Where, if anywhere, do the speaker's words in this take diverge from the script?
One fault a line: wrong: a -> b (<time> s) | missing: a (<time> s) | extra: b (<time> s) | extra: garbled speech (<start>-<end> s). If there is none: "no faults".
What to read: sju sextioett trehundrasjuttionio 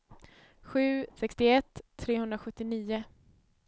no faults